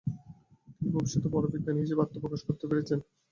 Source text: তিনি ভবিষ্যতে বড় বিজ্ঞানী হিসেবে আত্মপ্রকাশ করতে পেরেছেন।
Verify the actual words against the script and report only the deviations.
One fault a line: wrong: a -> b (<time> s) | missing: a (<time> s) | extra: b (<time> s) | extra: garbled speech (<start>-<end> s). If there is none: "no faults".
no faults